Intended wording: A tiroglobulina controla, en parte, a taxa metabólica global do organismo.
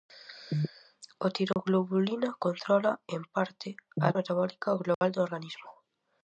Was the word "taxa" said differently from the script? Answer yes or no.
yes